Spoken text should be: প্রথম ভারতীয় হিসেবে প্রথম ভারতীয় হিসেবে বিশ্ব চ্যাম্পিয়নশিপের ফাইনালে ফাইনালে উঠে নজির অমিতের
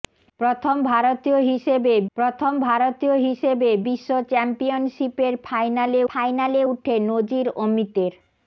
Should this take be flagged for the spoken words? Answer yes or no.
no